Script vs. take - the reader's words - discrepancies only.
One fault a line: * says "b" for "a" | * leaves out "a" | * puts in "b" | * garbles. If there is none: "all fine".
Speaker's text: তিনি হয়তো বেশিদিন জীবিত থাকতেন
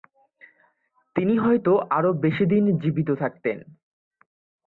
* puts in "আরও"